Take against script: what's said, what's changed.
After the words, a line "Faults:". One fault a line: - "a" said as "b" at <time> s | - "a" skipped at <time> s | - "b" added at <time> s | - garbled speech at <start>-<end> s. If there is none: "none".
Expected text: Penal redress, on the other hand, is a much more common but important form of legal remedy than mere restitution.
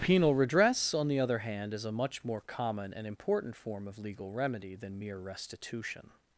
Penal redress, on the other hand, is a much more common and important form of legal remedy than mere restitution.
Faults:
- "but" said as "and" at 2.9 s